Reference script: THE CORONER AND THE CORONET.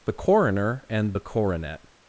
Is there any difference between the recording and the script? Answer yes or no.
no